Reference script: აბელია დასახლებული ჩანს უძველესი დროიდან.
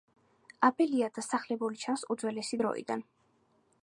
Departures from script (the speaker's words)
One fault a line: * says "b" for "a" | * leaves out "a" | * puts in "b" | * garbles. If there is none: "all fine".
all fine